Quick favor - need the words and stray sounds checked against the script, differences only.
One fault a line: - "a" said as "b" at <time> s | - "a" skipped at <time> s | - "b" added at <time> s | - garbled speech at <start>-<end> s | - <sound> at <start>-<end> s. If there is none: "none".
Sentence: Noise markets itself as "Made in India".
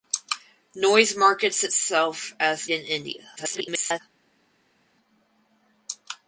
- "Made" skipped at 2.7 s
- garbled speech at 3.4-4.0 s